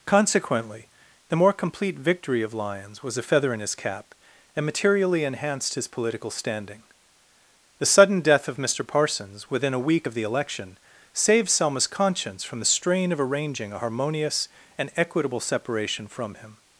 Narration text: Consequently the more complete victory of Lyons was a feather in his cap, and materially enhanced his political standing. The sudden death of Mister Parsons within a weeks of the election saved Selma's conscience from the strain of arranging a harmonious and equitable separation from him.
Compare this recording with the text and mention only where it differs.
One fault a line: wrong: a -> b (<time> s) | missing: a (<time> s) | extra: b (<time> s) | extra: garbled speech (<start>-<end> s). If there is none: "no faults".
wrong: weeks -> week (9.9 s)